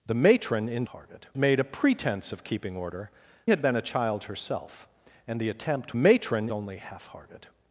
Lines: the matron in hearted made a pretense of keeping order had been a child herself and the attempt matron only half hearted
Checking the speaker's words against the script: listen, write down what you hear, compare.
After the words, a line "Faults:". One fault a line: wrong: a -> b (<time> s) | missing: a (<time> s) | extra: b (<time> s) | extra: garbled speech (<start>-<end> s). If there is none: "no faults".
the matron in hearted made a pretense of keeping order had been a child herself and the attempt matron only half hearted
Faults:
no faults